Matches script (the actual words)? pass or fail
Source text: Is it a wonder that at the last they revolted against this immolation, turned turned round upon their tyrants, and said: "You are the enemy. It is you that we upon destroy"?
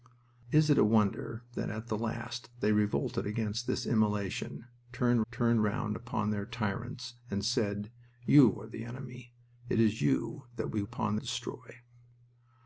pass